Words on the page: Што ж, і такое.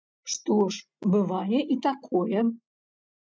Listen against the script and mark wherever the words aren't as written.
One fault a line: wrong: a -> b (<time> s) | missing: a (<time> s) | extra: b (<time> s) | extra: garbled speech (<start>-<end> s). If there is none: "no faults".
extra: бывае (1.1 s)